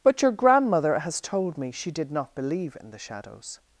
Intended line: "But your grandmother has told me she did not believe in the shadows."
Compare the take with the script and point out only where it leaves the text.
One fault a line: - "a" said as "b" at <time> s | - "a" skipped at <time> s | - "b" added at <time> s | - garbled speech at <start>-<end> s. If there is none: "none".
none